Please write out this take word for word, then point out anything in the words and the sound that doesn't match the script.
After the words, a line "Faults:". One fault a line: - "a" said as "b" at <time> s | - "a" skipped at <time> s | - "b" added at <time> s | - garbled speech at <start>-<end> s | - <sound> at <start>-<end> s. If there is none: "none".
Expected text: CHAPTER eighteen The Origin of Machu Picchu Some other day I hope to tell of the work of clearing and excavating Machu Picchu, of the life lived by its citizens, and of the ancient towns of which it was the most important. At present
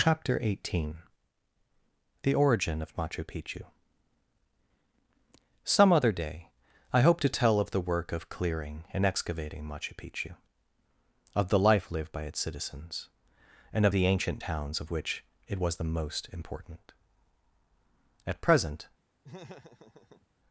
CHAPTER eighteen The Origin of Machu Picchu Some other day I hope to tell of the work of clearing and excavating Machu Picchu, of the life lived by its citizens, and of the ancient towns of which it was the most important. At present
Faults:
- laugh at 19.2-20.3 s